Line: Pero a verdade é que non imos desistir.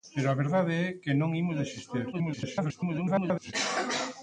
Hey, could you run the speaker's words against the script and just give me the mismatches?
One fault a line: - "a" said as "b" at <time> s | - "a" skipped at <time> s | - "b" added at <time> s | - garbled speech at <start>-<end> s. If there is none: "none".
- garbled speech at 2.1-3.5 s